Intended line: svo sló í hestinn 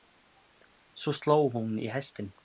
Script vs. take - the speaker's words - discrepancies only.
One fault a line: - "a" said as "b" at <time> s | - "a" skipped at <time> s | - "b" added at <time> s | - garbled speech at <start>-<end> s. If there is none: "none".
- "hún" added at 1.6 s